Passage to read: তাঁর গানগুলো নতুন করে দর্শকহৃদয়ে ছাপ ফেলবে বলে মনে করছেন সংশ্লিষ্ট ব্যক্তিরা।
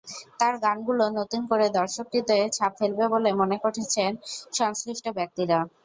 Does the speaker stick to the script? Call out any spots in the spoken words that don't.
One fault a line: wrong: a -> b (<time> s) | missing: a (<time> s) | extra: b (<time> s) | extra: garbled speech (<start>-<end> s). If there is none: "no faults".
no faults